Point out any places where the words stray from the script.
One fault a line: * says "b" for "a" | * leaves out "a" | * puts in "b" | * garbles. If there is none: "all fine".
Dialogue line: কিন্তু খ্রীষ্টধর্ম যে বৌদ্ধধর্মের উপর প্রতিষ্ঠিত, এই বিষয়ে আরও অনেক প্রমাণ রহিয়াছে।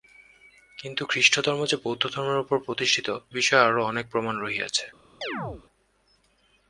* leaves out "এই"